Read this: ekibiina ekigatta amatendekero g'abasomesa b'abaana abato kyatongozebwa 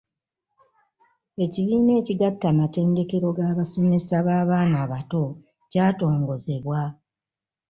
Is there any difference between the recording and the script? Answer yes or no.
no